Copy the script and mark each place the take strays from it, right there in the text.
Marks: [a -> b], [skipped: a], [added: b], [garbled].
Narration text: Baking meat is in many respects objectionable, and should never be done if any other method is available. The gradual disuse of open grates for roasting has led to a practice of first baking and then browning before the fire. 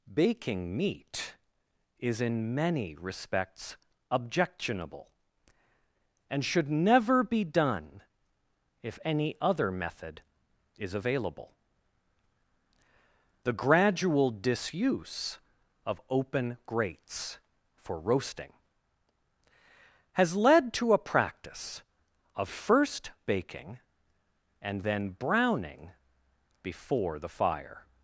Baking meat is in many respects objectionable, and should never be done if any other method is available. The gradual disuse of open grates for roasting has led to a practice of first baking and then browning before the fire.